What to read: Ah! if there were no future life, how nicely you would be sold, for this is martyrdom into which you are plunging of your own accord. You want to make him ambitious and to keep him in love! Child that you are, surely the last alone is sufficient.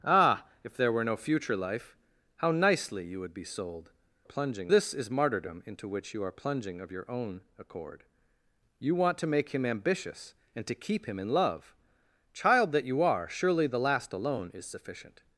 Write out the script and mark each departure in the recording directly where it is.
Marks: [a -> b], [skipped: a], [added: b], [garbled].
Ah! if there were no future life, how nicely you would be sold, [for -> plunging] this is martyrdom into which you are plunging of your own accord. You want to make him ambitious and to keep him in love! Child that you are, surely the last alone is sufficient.